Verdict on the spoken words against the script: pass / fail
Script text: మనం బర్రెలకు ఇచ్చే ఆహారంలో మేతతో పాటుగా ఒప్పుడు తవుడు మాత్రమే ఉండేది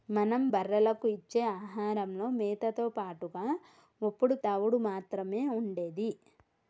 pass